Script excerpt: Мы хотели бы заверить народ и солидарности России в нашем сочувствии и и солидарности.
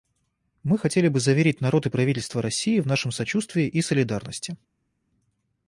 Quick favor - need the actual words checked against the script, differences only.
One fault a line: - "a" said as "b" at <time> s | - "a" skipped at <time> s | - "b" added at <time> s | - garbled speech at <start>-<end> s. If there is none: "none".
- "солидарности" said as "правительство" at 1.9 s
- "и" skipped at 3.8 s